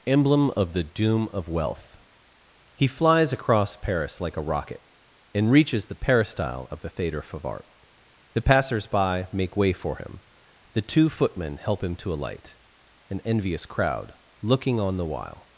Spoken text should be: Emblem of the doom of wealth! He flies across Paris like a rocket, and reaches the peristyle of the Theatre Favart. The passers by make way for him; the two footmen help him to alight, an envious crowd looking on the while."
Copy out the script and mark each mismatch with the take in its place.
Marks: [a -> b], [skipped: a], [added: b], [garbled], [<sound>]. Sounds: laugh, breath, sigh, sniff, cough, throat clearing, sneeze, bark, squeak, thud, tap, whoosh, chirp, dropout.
Emblem of the doom of wealth! He flies across Paris like a rocket, and reaches the peristyle of the Theatre Favart. The passers by make way for him; the two footmen help him to alight, an envious crowd looking on the while."